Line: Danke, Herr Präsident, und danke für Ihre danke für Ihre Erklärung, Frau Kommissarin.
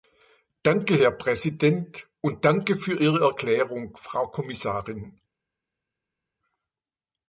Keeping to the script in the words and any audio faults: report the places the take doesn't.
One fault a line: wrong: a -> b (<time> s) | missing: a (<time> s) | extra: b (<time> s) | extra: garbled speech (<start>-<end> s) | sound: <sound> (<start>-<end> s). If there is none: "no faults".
missing: danke für Ihre (3.2 s)